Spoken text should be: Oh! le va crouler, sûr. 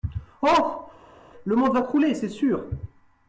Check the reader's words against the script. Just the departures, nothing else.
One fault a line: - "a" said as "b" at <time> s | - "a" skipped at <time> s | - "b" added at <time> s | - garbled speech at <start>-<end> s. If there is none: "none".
- "monde" added at 1.5 s
- "c'est" added at 2.1 s